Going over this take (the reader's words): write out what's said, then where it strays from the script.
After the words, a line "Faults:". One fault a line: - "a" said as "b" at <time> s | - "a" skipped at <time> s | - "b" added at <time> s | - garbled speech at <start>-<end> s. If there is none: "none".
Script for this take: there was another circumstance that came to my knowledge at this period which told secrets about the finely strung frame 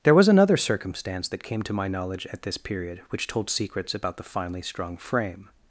there was another circumstance that came to my knowledge at this period which told secrets about the finely strung frame
Faults:
none